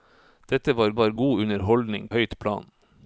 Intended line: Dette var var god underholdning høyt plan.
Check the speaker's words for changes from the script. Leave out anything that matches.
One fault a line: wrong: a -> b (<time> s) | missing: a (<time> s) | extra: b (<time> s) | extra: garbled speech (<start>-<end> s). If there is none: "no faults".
no faults